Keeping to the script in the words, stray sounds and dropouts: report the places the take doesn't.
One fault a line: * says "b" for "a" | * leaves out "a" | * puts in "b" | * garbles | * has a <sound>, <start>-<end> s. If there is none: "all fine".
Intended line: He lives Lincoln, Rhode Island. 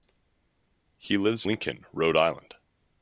all fine